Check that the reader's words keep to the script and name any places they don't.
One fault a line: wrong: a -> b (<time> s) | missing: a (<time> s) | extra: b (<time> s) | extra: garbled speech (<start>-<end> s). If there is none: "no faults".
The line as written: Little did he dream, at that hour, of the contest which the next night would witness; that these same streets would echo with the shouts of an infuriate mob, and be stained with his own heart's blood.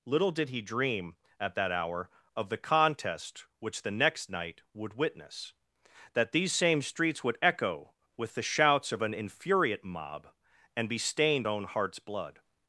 missing: with his (11.5 s)